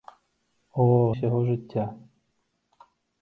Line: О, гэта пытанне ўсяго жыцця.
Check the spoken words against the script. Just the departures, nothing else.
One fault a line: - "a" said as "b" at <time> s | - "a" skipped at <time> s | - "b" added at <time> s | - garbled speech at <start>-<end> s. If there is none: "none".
- "гэта пытанне" skipped at 0.9 s